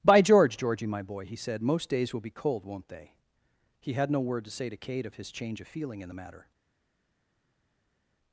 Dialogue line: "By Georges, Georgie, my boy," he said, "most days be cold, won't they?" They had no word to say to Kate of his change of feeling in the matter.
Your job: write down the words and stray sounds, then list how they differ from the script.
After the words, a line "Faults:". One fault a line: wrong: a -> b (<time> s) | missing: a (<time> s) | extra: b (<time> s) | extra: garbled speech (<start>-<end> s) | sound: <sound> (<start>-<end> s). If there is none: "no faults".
"By George, Georgie, my boy," he said, "most days will be cold, won't they?" He had no word to say to Kate of his change of feeling in the matter.
Faults:
wrong: Georges -> George (0.2 s)
extra: will (2.1 s)
wrong: They -> He (3.8 s)